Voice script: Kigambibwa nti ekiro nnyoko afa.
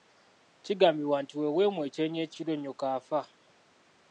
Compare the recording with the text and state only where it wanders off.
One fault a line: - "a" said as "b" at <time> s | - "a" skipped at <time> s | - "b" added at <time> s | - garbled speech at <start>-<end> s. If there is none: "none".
- "bwe weemwa ekyenyi" added at 1.4 s